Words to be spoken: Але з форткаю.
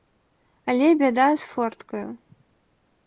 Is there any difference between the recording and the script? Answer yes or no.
yes